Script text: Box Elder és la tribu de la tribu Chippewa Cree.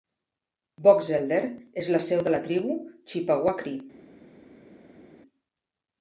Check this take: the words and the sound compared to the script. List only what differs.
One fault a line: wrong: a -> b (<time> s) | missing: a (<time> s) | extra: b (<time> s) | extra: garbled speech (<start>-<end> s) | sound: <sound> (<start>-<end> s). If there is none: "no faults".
wrong: tribu -> seu (2.1 s)